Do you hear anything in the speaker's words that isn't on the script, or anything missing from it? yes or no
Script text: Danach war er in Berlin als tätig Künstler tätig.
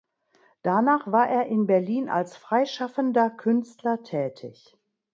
yes